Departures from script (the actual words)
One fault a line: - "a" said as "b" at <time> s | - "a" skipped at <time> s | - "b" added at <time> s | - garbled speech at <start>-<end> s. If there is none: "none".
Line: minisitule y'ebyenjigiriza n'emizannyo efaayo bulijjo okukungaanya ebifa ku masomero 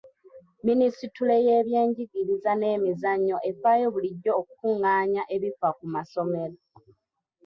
none